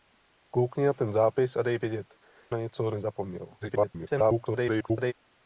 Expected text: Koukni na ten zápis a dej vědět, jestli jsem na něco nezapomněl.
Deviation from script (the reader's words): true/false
true